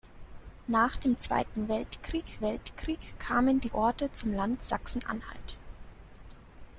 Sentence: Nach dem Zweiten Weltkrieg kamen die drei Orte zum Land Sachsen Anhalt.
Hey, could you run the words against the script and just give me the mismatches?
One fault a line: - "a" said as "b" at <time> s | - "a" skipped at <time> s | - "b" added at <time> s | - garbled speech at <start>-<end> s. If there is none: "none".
- "Weltkrieg" added at 2.4 s
- "drei" skipped at 3.7 s